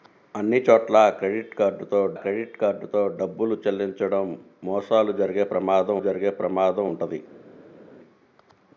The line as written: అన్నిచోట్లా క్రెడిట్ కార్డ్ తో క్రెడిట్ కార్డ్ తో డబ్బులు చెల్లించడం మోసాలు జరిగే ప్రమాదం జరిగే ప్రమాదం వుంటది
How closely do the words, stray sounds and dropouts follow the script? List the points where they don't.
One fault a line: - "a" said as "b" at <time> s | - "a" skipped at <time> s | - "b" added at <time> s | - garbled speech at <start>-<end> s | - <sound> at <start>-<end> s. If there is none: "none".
none